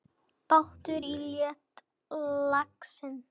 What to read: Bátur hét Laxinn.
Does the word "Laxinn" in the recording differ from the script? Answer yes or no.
no